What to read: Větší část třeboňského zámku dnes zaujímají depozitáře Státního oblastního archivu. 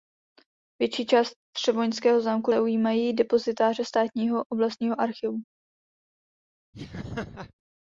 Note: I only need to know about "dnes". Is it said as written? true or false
false